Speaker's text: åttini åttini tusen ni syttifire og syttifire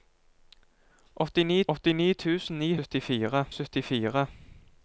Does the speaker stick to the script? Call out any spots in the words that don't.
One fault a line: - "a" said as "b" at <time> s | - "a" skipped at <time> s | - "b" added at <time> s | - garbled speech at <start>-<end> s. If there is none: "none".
none